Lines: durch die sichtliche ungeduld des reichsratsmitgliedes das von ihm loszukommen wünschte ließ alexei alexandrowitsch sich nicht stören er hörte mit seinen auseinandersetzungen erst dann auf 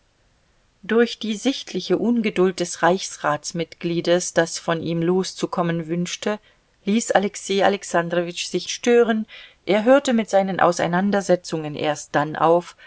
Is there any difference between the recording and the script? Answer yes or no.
yes